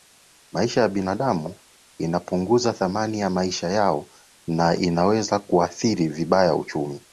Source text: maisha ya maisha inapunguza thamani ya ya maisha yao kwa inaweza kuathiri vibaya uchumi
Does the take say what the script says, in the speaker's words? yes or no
no